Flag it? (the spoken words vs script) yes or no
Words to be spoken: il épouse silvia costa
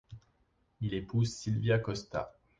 no